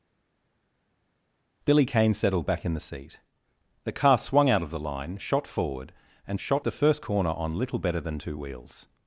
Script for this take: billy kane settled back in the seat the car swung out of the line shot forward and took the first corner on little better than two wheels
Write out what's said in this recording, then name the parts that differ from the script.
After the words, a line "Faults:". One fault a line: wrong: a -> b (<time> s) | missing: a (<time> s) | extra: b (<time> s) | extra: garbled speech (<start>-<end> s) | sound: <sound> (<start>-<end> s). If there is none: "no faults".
billy kane settled back in the seat the car swung out of the line shot forward and shot the first corner on little better than two wheels
Faults:
wrong: took -> shot (6.4 s)